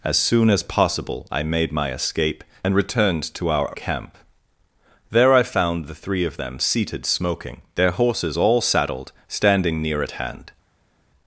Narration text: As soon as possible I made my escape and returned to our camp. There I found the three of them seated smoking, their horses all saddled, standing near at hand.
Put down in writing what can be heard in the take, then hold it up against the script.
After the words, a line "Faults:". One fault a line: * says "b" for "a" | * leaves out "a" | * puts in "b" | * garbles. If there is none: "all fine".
As soon as possible I made my escape and returned to our camp. There I found the three of them seated smoking, their horses all saddled, standing near at hand.
Faults:
all fine